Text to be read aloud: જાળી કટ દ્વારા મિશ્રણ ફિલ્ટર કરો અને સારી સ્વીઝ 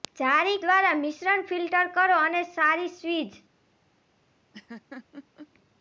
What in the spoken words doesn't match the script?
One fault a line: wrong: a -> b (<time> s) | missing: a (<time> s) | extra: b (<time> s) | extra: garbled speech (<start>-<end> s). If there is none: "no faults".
missing: કટ (0.6 s)